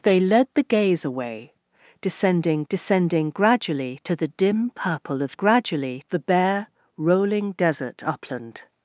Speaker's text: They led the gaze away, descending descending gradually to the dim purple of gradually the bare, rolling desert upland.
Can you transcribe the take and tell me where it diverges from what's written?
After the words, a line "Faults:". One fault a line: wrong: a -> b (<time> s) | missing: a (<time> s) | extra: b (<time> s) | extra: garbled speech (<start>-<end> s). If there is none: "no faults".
They led the gaze away, descending descending gradually to the dim purple of gradually the bare, rolling desert upland.
Faults:
no faults